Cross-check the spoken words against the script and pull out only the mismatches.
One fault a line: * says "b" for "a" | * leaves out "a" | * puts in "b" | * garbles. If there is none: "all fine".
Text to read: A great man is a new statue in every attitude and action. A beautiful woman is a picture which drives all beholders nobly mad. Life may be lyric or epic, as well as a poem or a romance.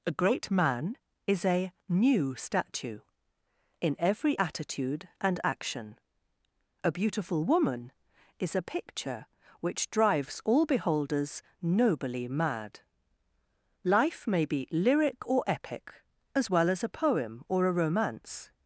all fine